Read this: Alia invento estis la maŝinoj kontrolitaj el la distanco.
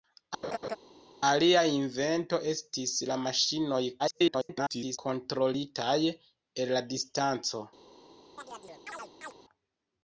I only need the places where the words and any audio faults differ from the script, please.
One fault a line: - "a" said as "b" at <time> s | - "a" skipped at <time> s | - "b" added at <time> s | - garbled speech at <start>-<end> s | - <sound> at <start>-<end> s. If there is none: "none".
- laugh at 0.4-0.8 s
- garbled speech at 4.0-5.0 s
- chirp at 8.4-9.3 s